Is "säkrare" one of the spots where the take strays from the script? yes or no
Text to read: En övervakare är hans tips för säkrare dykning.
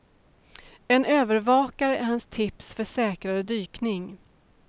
no